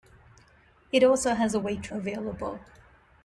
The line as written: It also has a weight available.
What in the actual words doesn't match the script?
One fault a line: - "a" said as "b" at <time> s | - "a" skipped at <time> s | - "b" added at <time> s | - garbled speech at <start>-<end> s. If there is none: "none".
none